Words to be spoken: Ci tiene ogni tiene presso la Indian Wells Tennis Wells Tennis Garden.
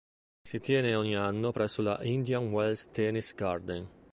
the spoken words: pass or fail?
fail